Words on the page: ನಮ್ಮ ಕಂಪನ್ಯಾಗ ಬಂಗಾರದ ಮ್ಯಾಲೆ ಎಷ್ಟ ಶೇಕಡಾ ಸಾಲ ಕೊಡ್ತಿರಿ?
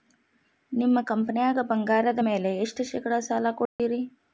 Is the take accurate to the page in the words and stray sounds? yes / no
no